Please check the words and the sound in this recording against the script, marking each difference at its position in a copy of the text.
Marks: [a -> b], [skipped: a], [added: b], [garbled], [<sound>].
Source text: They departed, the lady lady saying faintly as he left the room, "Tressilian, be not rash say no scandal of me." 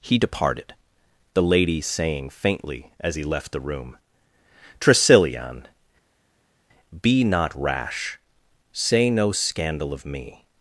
[They -> He] departed, the lady [skipped: lady] saying faintly as he left the room, "Tressilian, be not rash say no scandal of me."